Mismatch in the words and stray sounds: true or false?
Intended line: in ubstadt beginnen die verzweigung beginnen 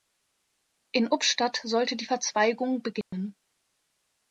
true